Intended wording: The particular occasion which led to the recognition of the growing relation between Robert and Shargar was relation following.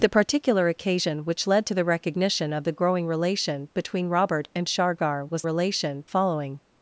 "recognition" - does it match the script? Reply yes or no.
yes